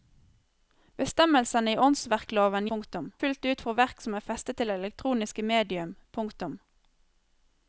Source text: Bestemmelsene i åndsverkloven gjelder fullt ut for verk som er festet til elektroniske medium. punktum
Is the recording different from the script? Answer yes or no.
yes